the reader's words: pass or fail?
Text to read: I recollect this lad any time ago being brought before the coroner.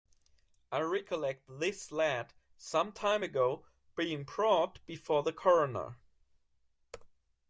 fail